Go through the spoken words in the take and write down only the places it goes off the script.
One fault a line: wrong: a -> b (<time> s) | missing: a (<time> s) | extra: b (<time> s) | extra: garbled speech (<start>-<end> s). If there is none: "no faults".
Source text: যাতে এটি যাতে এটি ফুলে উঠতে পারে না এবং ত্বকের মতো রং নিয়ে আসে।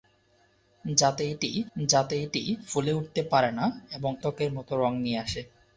no faults